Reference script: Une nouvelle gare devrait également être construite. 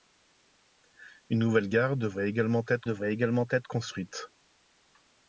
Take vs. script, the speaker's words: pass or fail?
fail